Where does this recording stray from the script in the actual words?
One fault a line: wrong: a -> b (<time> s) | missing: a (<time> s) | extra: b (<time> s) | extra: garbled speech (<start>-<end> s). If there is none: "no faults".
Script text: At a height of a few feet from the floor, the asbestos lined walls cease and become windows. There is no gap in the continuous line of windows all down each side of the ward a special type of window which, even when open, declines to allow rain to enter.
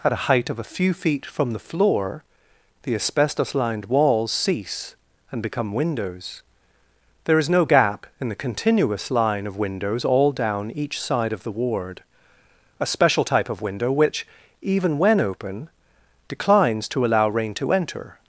no faults